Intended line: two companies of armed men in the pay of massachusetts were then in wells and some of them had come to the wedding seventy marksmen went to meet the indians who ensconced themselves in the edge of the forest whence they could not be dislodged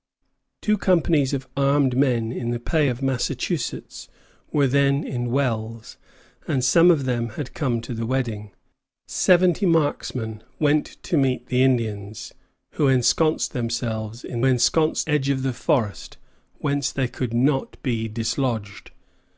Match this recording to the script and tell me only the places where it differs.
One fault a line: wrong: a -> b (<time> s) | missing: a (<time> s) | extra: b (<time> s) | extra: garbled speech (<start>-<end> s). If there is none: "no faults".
wrong: the -> ensconced (14.4 s)